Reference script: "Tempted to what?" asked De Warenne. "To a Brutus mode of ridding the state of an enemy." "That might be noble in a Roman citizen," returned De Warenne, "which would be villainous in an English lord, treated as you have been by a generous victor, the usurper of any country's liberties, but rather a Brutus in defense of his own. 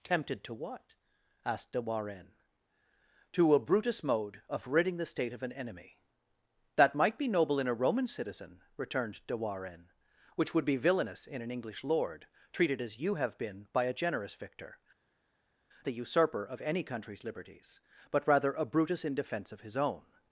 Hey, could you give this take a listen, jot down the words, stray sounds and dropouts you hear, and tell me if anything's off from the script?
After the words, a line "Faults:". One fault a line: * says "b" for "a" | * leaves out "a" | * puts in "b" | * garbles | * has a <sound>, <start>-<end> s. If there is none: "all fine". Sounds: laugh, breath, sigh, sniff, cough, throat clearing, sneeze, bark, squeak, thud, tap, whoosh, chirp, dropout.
"Tempted to what?" asked De Warenne. "To a Brutus mode of ridding the state of an enemy." "That might be noble in a Roman citizen," returned De Warenne, "which would be villainous in an English lord, treated as you have been by a generous victor, the usurper of any country's liberties, but rather a Brutus in defense of his own.
Faults:
all fine